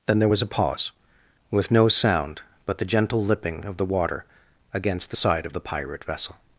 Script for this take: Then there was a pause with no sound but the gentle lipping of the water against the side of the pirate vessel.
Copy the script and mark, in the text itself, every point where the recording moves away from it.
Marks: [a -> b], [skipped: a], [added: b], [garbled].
Then there was a pause with no sound but the gentle lipping of the water against the side of the pirate vessel.